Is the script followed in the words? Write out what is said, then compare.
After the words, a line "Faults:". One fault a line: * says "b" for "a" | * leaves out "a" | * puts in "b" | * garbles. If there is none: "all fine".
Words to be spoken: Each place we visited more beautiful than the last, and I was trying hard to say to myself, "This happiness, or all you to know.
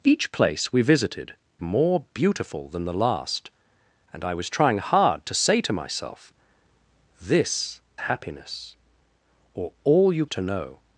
Each place we visited more beautiful than the last, and I was trying hard to say to myself, "This happiness, or all you to know.
Faults:
all fine